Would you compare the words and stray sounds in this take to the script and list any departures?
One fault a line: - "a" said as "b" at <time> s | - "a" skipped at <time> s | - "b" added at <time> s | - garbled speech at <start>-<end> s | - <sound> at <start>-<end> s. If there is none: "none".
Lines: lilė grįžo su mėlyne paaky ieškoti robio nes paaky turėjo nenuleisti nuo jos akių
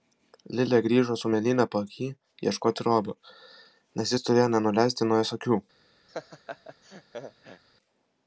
- "paaky" said as "jis" at 4.1 s
- laugh at 6.1-7.6 s